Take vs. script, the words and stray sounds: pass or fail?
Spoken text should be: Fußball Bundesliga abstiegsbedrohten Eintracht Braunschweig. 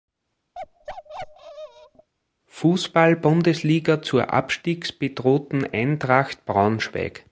fail